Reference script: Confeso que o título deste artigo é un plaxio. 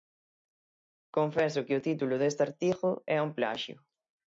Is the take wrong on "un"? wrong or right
right